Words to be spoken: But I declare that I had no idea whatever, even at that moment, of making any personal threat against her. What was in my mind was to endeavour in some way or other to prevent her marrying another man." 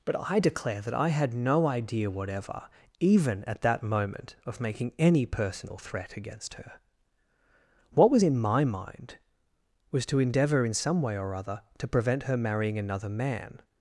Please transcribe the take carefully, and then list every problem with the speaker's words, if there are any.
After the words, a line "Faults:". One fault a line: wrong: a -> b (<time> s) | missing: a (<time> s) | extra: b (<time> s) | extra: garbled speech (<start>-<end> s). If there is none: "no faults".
But I declare that I had no idea whatever, even at that moment, of making any personal threat against her. What was in my mind was to endeavour in some way or other to prevent her marrying another man."
Faults:
no faults